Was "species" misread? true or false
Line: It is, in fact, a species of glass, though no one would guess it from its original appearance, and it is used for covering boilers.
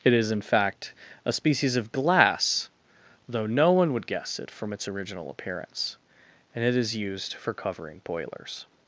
false